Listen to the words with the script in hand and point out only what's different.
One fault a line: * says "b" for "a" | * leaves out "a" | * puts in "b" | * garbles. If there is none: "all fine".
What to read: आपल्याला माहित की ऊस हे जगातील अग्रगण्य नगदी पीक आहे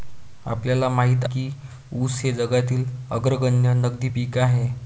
all fine